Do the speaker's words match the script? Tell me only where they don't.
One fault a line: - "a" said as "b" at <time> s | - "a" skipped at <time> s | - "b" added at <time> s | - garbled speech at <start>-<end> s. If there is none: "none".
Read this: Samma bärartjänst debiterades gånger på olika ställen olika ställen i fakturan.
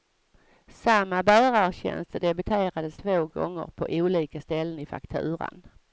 - "två" added at 2.9 s
- "olika ställen" skipped at 4.8 s